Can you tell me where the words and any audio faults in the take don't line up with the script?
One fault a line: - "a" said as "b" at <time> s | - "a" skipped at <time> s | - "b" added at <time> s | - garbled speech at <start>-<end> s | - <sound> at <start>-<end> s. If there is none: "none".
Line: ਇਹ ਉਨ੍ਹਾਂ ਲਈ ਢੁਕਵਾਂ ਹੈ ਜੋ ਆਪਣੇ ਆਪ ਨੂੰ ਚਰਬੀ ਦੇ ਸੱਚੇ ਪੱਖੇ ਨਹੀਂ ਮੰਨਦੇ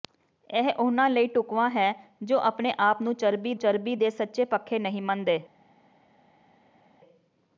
- "ਚਰਬੀ" added at 3.6 s